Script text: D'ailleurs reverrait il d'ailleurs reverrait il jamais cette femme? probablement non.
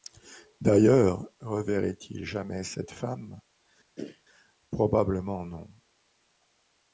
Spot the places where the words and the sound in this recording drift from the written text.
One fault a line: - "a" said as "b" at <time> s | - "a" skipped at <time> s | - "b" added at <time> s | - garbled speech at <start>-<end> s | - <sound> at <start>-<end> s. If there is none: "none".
- "d'ailleurs reverrait il" skipped at 2.2 s
- throat clearing at 4.0-4.2 s